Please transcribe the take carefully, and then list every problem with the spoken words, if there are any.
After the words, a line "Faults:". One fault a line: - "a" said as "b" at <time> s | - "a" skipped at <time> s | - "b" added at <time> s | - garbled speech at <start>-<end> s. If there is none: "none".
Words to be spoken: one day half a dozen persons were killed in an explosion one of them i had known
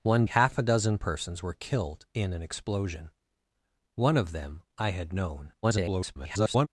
one half a dozen persons were killed in an explosion one of them i had known [garbled]
Faults:
- "day" skipped at 0.2 s
- garbled speech at 5.6-6.7 s